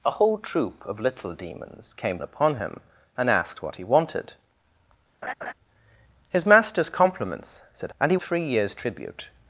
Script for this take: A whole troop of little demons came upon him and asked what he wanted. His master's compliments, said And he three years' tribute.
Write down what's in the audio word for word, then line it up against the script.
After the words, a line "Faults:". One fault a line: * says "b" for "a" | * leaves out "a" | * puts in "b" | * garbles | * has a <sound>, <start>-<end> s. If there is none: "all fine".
A whole troop of little demons came upon him and asked what he wanted. His master's compliments, said And he three years' tribute.
Faults:
* has a laugh, 5.2-5.5 s